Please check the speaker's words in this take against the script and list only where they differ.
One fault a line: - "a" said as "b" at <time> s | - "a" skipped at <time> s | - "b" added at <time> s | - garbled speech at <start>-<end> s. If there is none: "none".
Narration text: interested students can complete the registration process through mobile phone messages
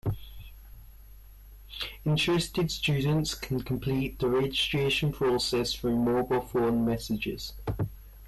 none